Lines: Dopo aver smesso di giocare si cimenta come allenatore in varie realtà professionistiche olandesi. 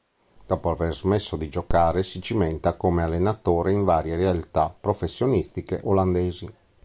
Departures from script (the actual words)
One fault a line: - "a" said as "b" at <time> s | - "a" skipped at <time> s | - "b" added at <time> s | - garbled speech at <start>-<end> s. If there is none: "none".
none